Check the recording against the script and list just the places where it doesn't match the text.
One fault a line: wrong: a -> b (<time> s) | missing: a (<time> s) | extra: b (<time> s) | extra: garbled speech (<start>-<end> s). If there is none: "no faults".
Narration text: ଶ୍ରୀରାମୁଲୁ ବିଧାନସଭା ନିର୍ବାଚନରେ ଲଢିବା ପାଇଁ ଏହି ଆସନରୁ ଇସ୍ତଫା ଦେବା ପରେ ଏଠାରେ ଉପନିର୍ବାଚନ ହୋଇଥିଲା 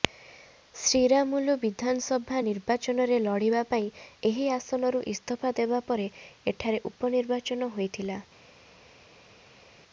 no faults